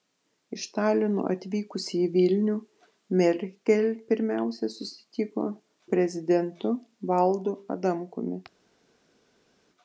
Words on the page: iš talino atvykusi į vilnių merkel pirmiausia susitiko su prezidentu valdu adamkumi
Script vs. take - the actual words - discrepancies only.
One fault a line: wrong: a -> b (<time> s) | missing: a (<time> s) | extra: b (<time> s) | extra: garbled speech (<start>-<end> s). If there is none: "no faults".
missing: su (5.5 s)